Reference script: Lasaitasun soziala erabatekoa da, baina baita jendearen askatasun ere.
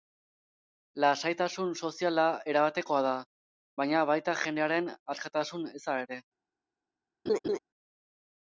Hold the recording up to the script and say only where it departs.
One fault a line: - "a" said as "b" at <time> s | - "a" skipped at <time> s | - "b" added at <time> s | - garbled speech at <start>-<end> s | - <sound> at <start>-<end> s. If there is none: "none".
- "eza" added at 5.8 s
- laugh at 7.3-7.6 s